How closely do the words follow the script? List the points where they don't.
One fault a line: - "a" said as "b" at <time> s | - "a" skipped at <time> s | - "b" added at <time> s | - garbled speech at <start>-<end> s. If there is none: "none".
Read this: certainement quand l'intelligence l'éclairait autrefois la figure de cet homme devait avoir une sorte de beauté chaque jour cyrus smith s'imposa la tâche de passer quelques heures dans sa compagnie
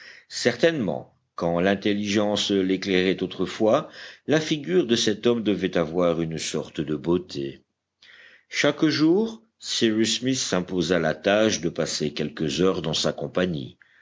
none